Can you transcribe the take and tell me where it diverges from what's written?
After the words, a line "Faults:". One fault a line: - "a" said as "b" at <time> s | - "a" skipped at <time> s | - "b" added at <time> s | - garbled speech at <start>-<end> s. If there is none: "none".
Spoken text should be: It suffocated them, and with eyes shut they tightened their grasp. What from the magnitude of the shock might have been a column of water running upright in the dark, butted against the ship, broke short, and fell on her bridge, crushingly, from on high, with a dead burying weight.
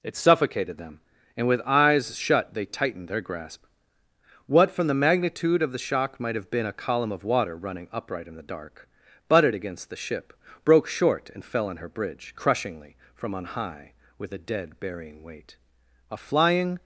It suffocated them, and with eyes shut they tightened their grasp. What from the magnitude of the shock might have been a column of water running upright in the dark, butted against the ship, broke short, and fell on her bridge, crushingly, from on high, with a dead burying weight. A flying
Faults:
- "A flying" added at 16.1 s